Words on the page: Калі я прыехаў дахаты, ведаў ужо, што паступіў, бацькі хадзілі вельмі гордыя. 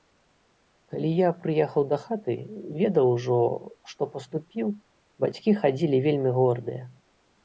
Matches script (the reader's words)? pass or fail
pass